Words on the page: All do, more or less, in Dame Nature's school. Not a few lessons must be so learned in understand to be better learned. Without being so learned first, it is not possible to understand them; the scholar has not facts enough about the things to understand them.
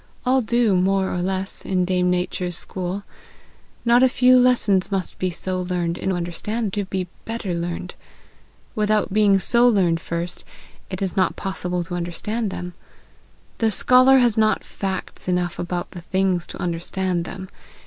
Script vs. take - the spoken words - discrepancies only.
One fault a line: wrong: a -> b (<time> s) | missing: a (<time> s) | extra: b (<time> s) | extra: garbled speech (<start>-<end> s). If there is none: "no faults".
no faults